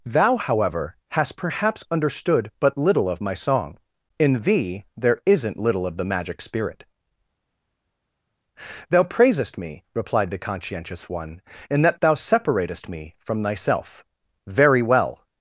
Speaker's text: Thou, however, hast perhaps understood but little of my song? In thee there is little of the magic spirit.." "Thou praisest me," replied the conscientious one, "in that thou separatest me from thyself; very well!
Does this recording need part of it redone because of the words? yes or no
yes